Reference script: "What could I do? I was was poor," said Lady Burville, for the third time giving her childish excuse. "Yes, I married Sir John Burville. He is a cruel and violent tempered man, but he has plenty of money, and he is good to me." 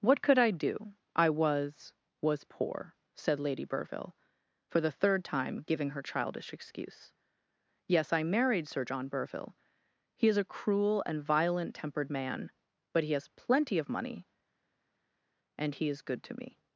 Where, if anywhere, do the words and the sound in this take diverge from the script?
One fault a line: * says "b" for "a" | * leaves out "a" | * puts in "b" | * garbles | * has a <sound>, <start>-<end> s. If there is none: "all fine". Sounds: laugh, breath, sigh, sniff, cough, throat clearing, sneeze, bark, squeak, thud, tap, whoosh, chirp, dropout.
all fine